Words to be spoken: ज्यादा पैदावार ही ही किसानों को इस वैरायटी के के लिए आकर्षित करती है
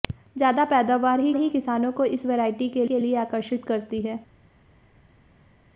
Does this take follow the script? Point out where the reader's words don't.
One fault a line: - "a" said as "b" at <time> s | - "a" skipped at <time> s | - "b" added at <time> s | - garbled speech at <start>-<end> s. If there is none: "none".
none